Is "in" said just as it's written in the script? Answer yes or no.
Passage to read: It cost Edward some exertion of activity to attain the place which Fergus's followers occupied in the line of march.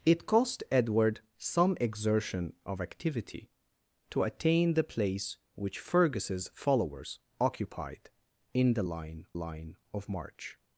yes